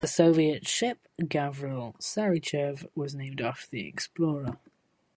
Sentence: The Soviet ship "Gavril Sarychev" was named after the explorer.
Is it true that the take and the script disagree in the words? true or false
false